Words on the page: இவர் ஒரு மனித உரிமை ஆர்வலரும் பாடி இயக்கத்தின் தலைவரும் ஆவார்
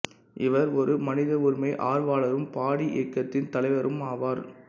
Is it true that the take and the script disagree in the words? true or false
false